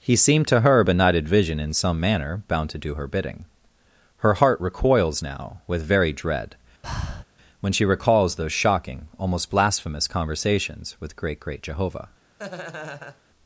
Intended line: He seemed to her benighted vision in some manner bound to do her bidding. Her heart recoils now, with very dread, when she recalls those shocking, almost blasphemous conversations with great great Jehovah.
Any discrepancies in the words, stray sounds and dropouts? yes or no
yes